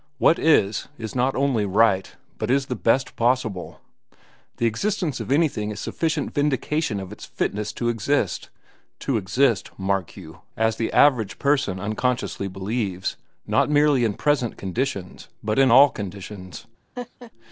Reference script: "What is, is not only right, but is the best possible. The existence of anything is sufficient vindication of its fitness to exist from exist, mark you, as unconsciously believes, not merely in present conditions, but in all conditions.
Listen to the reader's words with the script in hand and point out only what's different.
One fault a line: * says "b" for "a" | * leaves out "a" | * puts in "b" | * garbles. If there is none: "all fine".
* says "to" for "from"
* puts in "the average person"